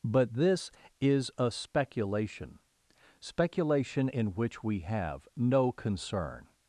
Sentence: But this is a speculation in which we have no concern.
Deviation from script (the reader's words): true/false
true